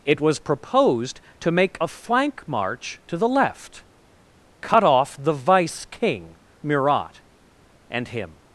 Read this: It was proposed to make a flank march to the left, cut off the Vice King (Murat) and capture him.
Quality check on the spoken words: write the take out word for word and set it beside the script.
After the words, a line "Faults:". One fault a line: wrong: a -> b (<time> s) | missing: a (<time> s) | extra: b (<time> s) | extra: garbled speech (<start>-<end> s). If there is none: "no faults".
It was proposed to make a flank march to the left, cut off the Vice King (Murat) and him.
Faults:
missing: capture (8.1 s)